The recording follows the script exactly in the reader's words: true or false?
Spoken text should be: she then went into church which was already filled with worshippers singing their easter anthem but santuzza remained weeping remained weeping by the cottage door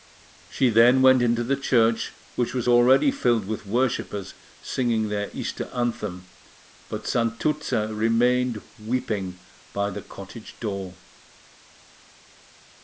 false